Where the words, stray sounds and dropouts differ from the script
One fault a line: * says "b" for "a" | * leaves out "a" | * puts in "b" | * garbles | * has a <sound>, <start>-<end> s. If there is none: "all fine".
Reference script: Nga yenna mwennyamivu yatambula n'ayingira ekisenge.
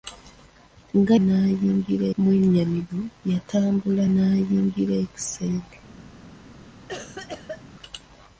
* says "n'ayingira" for "yenna"
* has a cough, 6.9-7.6 s